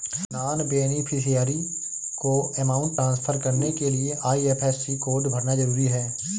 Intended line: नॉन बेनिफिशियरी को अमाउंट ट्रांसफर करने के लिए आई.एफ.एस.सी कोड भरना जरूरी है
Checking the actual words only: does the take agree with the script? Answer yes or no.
yes